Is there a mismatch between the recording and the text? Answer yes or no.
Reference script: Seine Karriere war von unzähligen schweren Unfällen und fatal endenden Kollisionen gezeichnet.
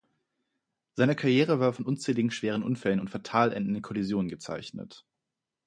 no